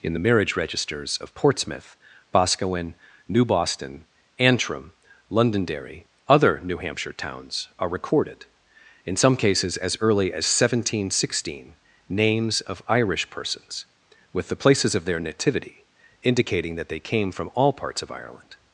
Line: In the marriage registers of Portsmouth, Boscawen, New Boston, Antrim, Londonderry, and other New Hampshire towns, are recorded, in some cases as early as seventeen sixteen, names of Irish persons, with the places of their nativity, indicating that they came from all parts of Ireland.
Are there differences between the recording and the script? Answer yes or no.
yes